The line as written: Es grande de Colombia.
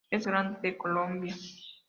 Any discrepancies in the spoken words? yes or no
no